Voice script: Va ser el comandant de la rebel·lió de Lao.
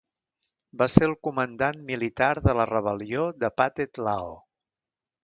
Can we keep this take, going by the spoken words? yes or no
no